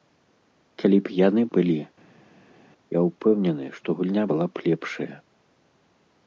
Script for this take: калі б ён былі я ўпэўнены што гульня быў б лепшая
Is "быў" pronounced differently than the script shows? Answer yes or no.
yes